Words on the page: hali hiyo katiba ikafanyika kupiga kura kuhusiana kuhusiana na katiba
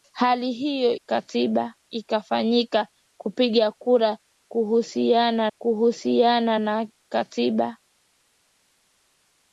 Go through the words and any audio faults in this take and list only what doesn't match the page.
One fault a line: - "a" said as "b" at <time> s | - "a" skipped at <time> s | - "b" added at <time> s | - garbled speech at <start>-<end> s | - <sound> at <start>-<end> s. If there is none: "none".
none